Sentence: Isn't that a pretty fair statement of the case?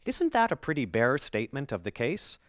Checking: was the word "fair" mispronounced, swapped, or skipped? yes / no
yes